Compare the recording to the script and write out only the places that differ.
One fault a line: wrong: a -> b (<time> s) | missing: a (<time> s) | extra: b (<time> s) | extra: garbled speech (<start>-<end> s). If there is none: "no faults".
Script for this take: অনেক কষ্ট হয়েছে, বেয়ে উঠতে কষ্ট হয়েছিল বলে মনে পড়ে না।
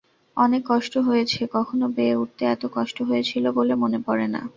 extra: কখনো (1.6 s)
extra: এত (2.5 s)